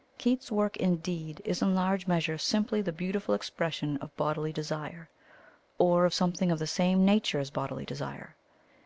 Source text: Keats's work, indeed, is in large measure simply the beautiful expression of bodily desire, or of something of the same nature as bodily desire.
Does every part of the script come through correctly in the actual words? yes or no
yes